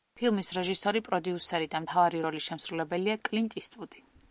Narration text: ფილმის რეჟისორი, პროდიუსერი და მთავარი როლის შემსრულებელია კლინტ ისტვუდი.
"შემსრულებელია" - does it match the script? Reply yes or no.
yes